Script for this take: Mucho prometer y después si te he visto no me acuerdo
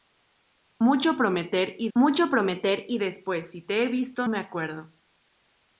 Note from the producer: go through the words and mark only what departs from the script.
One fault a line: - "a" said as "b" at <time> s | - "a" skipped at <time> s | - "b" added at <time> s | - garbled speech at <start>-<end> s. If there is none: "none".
- "mucho prometer y" added at 1.9 s
- "no" skipped at 4.3 s